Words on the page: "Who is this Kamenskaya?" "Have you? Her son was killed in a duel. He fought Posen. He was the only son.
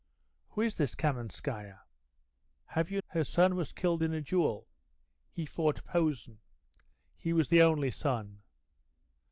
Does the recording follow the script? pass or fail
pass